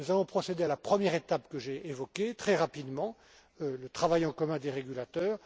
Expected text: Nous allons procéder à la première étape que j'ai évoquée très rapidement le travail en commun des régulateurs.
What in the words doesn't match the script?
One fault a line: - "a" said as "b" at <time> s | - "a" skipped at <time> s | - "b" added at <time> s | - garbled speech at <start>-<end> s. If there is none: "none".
none